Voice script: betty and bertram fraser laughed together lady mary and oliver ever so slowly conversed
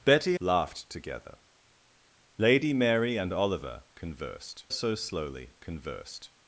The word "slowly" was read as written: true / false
true